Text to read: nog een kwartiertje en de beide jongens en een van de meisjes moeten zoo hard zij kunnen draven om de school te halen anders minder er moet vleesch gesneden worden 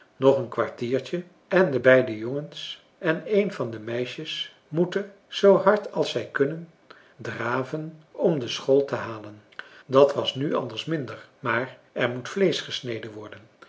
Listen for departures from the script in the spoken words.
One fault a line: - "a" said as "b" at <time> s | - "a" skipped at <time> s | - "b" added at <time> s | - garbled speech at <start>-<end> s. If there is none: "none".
- "als" added at 5.9 s
- "dat was nu" added at 9.8 s
- "maar" added at 11.4 s